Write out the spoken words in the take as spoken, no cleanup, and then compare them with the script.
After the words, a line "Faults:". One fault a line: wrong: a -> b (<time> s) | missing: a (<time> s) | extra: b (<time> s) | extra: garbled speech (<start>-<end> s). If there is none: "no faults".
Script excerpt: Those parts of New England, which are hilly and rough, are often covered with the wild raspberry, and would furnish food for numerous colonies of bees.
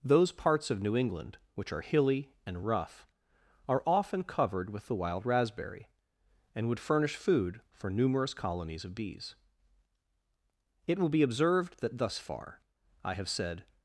Those parts of New England, which are hilly and rough, are often covered with the wild raspberry, and would furnish food for numerous colonies of bees. It will be observed that thus far, I have said
Faults:
extra: It will be observed that thus far I have said (10.9 s)